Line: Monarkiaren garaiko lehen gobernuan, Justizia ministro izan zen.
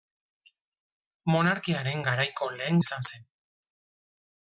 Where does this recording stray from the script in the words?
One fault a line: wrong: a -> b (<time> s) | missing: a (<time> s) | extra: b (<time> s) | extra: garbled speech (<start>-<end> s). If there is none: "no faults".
missing: gobernuan Justizia ministro (2.8 s)